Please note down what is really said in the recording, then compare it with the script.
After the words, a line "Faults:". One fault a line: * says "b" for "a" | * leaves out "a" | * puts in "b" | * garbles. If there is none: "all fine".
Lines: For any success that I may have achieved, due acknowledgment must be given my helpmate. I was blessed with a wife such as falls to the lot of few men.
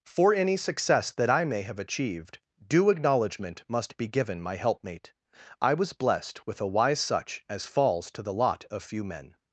For any success that I may have achieved, due acknowledgment must be given my helpmate. I was blessed with a wise such as falls to the lot of few men.
Faults:
* says "wise" for "wife"